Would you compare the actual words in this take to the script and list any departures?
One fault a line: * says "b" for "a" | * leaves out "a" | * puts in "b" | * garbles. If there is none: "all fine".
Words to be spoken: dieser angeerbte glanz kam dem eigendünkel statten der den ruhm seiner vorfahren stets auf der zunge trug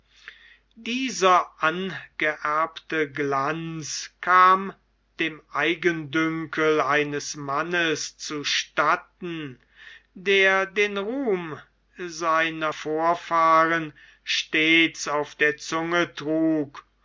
* puts in "eines mannes zu"